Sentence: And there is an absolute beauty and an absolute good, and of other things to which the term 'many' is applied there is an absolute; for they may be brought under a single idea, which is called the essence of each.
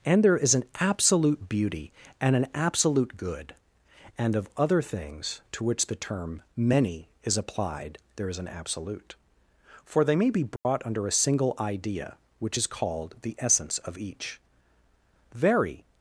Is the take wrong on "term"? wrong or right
right